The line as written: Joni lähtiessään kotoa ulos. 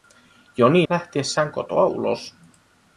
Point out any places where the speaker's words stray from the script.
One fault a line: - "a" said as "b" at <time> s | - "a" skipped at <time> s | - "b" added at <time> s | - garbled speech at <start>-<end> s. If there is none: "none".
none